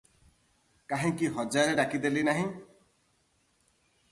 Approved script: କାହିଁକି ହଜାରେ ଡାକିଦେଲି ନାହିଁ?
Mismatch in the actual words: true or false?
false